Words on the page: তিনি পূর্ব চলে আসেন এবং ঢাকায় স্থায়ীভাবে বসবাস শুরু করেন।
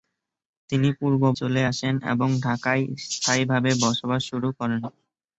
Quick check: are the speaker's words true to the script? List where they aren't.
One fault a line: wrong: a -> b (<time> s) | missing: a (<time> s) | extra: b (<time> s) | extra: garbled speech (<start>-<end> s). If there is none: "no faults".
no faults